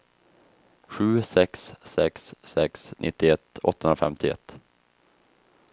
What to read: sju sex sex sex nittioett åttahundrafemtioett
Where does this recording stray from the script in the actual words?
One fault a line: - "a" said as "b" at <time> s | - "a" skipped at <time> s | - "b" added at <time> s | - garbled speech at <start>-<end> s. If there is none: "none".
none